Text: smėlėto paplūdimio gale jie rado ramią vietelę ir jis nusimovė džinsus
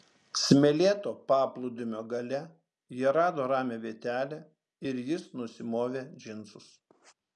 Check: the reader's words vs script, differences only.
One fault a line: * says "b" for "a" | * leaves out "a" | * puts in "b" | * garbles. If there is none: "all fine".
all fine